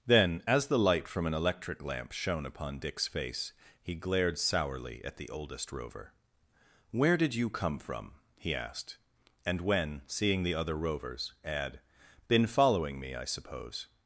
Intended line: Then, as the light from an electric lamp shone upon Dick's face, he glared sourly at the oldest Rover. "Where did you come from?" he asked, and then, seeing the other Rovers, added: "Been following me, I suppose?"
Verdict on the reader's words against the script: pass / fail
fail